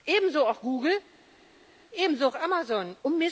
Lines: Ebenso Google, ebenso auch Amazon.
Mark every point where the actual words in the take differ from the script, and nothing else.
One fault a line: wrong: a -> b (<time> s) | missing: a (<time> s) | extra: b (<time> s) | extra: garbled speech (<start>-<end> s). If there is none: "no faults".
extra: auch (0.5 s)